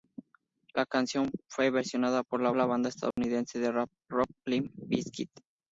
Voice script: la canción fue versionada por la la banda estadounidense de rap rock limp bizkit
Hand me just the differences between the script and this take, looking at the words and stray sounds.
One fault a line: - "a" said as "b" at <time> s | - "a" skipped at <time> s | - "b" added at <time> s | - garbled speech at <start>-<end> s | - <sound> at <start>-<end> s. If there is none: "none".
- dropout at 3.1-3.2 s